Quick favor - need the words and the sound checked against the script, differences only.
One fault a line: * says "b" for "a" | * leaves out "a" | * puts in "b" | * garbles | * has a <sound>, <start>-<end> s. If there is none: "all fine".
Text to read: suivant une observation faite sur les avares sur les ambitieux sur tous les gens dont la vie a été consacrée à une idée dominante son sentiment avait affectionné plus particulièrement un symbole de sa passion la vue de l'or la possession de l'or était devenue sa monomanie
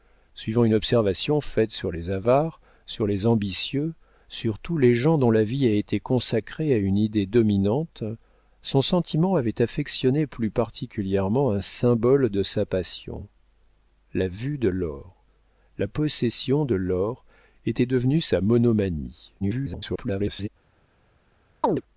* garbles
* has a chirp, 21.6-21.8 s